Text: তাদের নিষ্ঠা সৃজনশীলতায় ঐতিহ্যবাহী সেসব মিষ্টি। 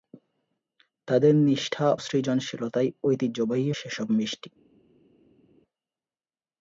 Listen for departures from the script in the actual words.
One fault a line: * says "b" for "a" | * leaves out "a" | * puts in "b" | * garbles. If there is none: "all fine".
all fine